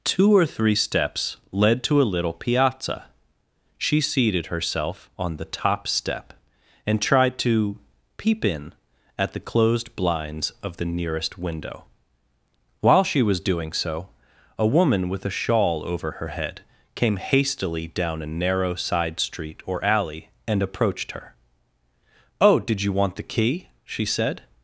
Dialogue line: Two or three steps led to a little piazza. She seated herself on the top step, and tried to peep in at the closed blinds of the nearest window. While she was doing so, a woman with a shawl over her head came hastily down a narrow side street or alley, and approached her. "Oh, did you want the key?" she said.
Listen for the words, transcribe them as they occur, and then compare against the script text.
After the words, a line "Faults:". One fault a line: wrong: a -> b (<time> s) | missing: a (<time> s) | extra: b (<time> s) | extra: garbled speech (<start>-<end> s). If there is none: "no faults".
Two or three steps led to a little piazza. She seated herself on the top step, and tried to peep in at the closed blinds of the nearest window. While she was doing so, a woman with a shawl over her head came hastily down a narrow side street or alley, and approached her. "Oh, did you want the key?" she said.
Faults:
no faults